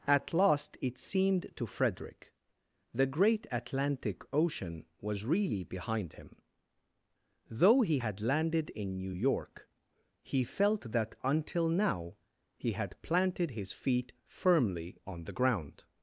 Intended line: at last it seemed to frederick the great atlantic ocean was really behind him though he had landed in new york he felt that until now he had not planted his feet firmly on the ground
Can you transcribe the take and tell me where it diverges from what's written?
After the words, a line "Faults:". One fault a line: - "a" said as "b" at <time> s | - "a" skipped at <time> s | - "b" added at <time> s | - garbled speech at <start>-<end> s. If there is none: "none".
at last it seemed to frederick the great atlantic ocean was really behind him though he had landed in new york he felt that until now he had planted his feet firmly on the ground
Faults:
- "not" skipped at 13.0 s